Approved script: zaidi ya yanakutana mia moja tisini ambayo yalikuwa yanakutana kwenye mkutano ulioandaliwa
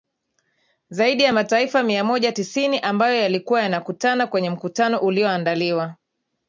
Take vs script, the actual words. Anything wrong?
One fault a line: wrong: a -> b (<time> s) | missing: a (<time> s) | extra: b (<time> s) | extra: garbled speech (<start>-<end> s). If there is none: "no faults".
wrong: yanakutana -> mataifa (1.3 s)